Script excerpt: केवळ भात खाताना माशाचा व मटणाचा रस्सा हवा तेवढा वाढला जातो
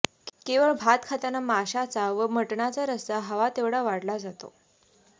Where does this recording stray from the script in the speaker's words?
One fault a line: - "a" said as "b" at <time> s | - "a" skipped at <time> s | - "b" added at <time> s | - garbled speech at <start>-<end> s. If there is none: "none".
none